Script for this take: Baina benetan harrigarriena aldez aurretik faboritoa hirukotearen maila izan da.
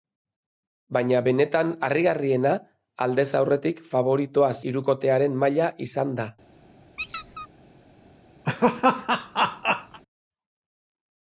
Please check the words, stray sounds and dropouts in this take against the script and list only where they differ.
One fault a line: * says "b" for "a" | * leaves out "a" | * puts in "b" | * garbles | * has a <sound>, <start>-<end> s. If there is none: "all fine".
* has a squeak, 7.0-7.5 s
* has a laugh, 8.5-10.0 s